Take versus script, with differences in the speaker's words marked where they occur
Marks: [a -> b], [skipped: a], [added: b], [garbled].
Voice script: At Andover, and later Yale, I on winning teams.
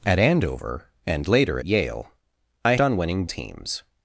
At Andover, and later Yale, I on winning teams.